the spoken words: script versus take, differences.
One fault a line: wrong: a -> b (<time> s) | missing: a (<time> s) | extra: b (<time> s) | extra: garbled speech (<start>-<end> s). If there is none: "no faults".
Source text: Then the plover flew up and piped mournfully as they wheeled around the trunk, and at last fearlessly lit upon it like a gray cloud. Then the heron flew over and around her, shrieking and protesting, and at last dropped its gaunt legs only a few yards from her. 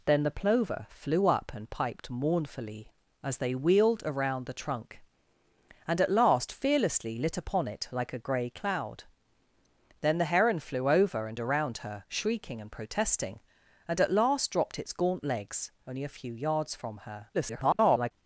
extra: garbled speech (17.3-18.1 s)